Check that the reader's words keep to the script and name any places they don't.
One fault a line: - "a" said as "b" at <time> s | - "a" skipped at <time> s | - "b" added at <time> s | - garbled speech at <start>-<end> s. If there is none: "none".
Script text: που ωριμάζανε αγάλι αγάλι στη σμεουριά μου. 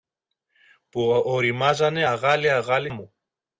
- "στη σμεουριά" skipped at 2.9 s